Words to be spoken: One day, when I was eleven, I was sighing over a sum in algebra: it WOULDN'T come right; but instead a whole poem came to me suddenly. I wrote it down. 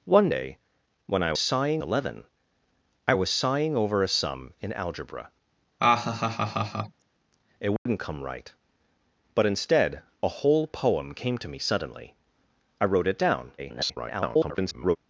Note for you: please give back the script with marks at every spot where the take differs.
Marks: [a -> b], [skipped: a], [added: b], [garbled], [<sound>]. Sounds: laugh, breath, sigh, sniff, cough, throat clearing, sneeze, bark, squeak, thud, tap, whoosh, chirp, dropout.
One day, when I [was -> sighing] eleven, I was sighing over a sum in algebra: [laugh] it WOULDN'T [dropout] come right; but instead a whole poem came to me suddenly. I wrote it down. [garbled]